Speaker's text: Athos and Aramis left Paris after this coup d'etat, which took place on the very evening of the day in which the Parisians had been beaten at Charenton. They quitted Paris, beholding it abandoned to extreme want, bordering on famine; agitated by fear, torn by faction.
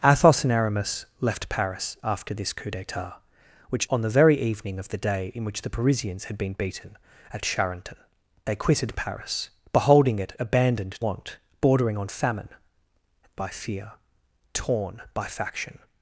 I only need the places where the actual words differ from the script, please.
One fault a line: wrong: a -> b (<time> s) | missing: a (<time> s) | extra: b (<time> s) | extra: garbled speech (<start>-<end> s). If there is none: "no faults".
missing: took place (3.9 s)
missing: to extreme (11.0 s)
missing: agitated (12.5 s)